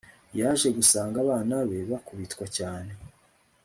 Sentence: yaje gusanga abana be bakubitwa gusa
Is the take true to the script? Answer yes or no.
no